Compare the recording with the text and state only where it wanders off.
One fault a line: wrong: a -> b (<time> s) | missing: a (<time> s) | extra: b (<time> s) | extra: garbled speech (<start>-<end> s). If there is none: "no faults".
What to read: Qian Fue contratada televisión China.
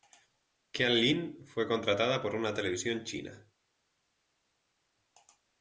extra: Lin (0.9 s)
extra: por una (2.2 s)